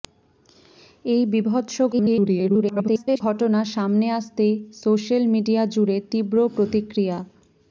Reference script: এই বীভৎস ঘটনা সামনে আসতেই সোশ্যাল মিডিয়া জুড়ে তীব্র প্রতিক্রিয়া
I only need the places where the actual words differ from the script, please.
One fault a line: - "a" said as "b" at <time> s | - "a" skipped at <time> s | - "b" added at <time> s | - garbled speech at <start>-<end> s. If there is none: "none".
- garbled speech at 1.9-3.2 s